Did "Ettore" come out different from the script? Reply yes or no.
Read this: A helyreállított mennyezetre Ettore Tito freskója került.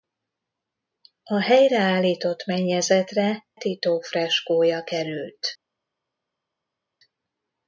yes